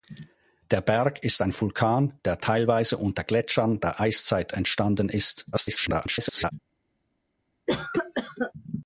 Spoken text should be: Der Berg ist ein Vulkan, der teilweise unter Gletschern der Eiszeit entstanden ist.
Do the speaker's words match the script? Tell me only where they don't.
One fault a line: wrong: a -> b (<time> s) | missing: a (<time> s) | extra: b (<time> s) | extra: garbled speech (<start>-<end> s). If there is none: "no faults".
extra: garbled speech (5.5-6.5 s)